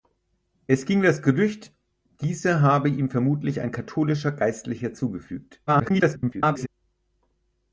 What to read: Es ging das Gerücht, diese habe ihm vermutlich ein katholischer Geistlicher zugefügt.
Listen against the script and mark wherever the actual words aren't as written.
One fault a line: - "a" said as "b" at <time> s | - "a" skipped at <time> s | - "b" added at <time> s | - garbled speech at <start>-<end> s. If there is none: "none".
- garbled speech at 5.7-6.7 s